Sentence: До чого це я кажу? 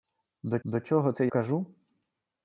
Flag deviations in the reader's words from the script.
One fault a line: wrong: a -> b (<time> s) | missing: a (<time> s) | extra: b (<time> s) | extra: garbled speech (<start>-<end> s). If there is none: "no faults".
extra: до (0.6 s)
missing: я (1.3 s)